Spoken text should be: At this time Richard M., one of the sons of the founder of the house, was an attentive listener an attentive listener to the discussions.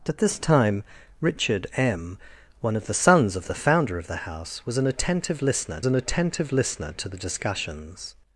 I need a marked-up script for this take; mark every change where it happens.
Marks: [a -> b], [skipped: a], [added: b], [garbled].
At this time Richard M., one of the sons of the founder of the house, was an attentive listener an attentive listener to the discussions.